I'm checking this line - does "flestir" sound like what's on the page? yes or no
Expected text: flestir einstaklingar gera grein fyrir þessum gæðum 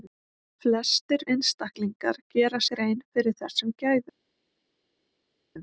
yes